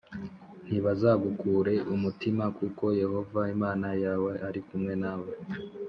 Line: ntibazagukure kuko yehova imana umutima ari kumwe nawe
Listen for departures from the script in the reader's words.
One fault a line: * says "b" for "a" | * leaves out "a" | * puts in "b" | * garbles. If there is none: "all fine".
* puts in "umutima"
* says "yawe" for "umutima"